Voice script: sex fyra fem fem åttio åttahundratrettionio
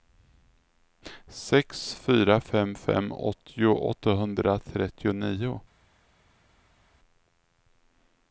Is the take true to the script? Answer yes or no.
yes